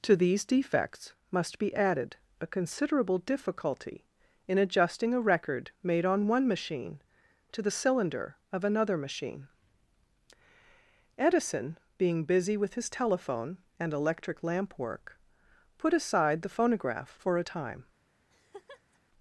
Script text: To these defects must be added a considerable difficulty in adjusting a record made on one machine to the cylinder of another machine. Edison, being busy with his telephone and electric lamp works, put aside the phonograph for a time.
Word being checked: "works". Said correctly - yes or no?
no